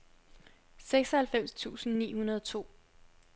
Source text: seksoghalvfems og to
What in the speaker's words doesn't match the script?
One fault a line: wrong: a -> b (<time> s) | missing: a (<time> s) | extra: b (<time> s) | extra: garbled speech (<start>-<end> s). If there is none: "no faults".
extra: tusind ni hundrede (1.5 s)